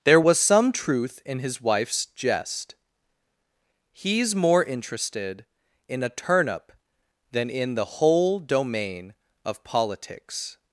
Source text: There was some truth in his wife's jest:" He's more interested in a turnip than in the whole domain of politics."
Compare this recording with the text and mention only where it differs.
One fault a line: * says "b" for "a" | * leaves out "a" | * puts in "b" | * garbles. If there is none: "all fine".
all fine